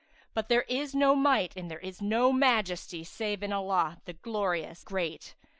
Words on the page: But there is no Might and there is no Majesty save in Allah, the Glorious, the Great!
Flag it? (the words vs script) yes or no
yes